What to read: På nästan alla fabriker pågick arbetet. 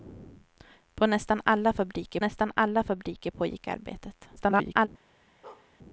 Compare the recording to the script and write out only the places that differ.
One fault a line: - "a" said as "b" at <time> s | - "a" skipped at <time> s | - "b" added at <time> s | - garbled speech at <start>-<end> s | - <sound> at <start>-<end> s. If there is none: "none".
- "nästan alla fabriker" added at 2.2 s
- garbled speech at 4.4-4.9 s
- bark at 5.4-5.7 s